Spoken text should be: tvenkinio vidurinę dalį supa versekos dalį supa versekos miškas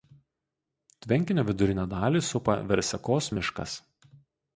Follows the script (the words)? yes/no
no